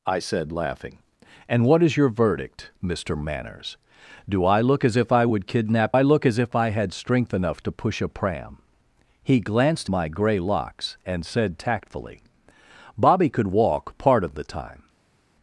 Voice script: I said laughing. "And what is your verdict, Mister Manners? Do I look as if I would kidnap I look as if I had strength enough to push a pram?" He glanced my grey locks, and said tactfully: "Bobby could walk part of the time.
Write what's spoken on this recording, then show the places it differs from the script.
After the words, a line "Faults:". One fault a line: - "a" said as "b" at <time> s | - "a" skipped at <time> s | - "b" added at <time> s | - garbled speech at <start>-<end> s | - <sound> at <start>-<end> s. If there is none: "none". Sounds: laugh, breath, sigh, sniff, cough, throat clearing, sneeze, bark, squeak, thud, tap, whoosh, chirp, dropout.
I said laughing. "And what is your verdict, Mister Manners? Do I look as if I would kidnap I look as if I had strength enough to push a pram?" He glanced my grey locks, and said tactfully: "Bobby could walk part of the time.
Faults:
none